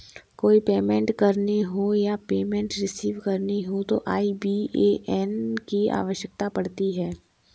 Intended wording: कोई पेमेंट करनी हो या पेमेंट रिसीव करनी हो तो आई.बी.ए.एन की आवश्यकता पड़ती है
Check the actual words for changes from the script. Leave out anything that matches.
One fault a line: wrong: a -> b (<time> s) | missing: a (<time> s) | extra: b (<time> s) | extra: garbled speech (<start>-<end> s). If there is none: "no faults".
no faults